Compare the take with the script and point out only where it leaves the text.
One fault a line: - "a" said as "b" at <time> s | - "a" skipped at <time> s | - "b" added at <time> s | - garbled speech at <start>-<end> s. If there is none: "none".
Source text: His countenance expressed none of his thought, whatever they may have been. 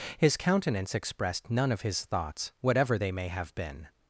- "thought" said as "thoughts" at 2.1 s